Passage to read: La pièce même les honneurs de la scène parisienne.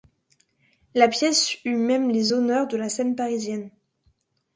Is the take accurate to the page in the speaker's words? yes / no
no